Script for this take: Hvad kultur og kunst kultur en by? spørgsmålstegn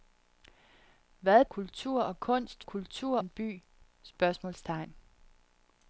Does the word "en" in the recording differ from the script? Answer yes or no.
no